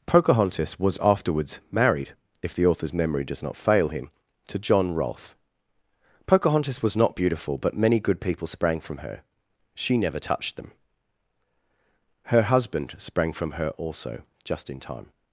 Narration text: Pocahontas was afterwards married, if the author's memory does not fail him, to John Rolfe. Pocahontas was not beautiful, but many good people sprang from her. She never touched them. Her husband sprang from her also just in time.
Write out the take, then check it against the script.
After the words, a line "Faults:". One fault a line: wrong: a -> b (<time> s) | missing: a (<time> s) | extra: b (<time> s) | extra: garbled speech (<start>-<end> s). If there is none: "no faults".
Pocahontas was afterwards married, if the author's memory does not fail him, to John Rolfe. Pocahontas was not beautiful, but many good people sprang from her. She never touched them. Her husband sprang from her also just in time.
Faults:
no faults